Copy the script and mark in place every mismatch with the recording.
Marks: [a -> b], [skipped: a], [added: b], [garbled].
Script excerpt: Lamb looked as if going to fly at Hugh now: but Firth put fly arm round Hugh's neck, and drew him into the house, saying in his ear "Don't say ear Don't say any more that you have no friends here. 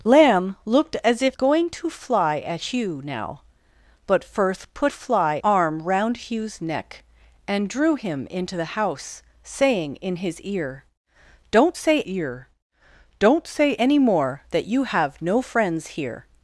Lamb looked as if going to fly at Hugh now: but Firth put fly arm round Hugh's neck, and drew him into the house, saying in his ear "Don't say ear Don't say any more that you have no friends here.